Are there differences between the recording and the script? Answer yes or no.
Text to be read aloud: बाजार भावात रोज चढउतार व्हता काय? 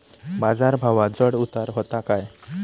yes